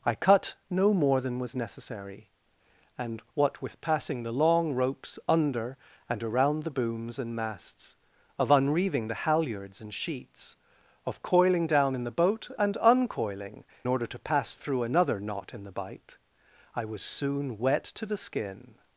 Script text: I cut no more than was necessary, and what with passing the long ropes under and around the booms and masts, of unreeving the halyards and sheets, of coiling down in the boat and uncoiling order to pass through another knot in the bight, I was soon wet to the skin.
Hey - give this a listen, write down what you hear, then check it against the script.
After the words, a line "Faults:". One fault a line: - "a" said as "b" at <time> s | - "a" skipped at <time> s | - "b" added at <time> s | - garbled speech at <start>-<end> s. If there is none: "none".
I cut no more than was necessary, and what with passing the long ropes under and around the booms and masts, of unreeving the halyards and sheets, of coiling down in the boat and uncoiling order to pass through another knot in the bight, I was soon wet to the skin.
Faults:
none